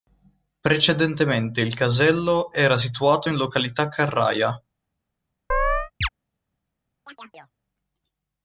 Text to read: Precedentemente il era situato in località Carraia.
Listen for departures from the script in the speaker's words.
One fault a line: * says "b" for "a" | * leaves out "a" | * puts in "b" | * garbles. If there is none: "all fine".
* puts in "casello"